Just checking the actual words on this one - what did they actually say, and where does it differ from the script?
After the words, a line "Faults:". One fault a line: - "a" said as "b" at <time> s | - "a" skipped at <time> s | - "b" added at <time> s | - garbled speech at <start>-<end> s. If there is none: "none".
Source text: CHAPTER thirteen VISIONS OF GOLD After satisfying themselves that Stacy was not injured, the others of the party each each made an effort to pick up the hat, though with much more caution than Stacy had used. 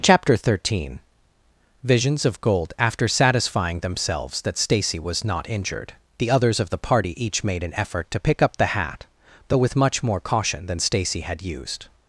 CHAPTER thirteen VISIONS OF GOLD After satisfying themselves that Stacy was not injured, the others of the party each made an effort to pick up the hat, though with much more caution than Stacy had used.
Faults:
- "each" skipped at 7.4 s